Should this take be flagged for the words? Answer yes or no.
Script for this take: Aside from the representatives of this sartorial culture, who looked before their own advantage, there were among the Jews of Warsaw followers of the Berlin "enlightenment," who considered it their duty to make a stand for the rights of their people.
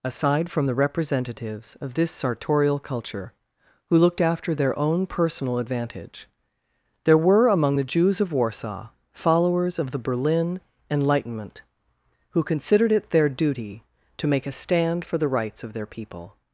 yes